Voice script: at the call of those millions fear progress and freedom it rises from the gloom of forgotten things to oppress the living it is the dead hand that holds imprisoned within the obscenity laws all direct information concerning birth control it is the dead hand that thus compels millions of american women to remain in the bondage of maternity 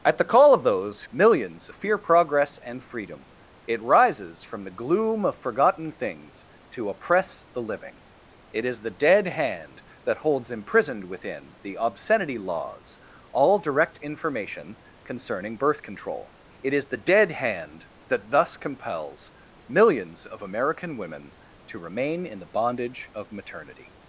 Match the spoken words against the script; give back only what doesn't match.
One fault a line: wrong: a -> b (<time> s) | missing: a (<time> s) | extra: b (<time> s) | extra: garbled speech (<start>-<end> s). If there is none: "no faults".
no faults